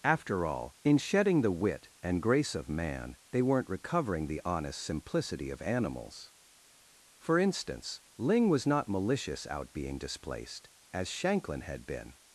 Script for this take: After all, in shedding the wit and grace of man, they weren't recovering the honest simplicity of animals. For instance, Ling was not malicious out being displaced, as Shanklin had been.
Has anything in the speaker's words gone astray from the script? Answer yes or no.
no